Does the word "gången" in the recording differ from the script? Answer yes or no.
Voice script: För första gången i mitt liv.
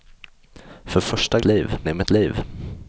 yes